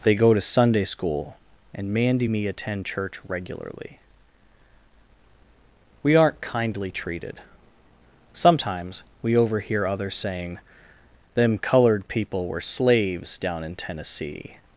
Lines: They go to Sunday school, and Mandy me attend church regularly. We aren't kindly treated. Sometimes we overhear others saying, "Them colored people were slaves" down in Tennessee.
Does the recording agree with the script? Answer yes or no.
yes